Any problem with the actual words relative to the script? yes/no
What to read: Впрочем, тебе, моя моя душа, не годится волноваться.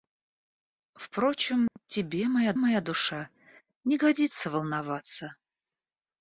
no